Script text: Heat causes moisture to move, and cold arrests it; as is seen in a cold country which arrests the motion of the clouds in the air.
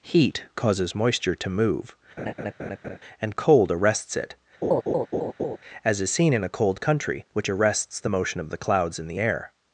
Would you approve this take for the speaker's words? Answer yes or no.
yes